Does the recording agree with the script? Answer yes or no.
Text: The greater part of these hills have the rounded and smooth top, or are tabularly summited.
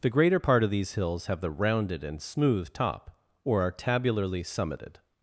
yes